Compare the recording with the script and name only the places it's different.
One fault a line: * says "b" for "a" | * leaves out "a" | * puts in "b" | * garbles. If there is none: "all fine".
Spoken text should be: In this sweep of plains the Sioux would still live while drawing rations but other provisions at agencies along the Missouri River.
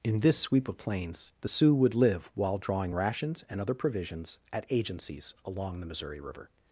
* leaves out "still"
* says "and" for "but"